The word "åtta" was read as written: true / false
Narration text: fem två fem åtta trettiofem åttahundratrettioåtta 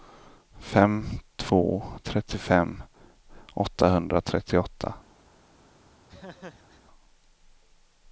false